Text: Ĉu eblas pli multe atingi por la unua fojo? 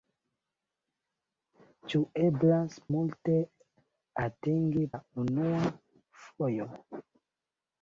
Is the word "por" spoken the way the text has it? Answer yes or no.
no